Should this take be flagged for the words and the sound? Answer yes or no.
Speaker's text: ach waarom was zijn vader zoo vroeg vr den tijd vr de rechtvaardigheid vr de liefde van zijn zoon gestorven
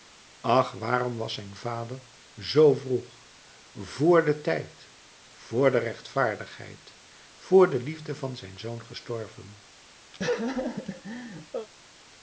yes